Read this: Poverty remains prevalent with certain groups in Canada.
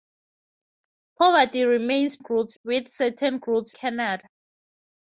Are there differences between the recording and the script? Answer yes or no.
yes